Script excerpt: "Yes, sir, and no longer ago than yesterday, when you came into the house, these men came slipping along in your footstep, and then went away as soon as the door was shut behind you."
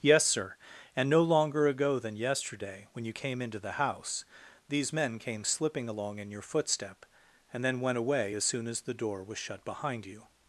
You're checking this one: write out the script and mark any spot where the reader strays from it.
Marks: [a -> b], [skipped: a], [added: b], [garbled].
"Yes, sir, and no longer ago than yesterday, when you came into the house, these men came slipping along in your footstep, and then went away as soon as the door was shut behind you."